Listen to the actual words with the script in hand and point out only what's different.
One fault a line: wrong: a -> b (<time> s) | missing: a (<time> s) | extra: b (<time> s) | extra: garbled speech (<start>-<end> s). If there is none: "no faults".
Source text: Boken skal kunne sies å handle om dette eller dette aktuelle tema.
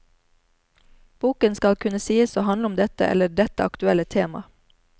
no faults